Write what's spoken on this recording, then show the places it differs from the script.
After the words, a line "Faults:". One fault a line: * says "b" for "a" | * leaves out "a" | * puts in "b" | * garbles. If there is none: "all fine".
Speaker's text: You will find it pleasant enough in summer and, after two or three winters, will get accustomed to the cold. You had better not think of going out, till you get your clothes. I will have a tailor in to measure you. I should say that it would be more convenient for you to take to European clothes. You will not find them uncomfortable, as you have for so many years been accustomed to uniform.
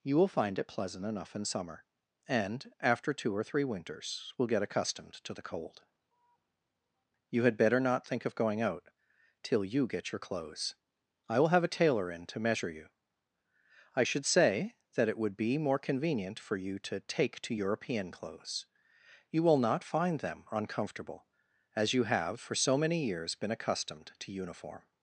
You will find it pleasant enough in summer and, after two or three winters, will get accustomed to the cold. You had better not think of going out, till you get your clothes. I will have a tailor in to measure you. I should say that it would be more convenient for you to take to European clothes. You will not find them uncomfortable, as you have for so many years been accustomed to uniform.
Faults:
all fine